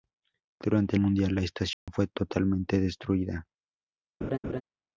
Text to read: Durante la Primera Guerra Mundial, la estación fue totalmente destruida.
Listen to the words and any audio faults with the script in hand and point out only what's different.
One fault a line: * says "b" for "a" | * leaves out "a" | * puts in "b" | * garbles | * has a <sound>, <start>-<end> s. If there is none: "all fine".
* leaves out "la Primera Guerra"
* has a dropout, 1.7-1.9 s
* has a laugh, 4.2-4.6 s